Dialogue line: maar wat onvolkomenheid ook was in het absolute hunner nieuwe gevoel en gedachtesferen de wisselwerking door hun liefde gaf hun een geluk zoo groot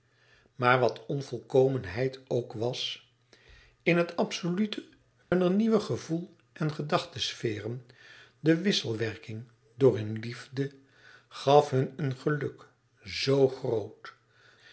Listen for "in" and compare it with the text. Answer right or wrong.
right